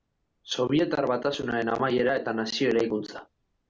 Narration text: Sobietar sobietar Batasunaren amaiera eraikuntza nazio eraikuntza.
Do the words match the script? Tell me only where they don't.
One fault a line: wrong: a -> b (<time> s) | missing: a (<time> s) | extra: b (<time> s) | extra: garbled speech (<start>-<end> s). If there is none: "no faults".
missing: sobietar (1.1 s)
wrong: eraikuntza -> eta (2.2 s)